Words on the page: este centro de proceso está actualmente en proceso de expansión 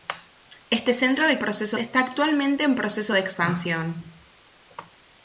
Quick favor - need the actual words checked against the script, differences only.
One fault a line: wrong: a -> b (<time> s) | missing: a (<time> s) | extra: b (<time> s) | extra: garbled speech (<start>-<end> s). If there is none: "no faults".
no faults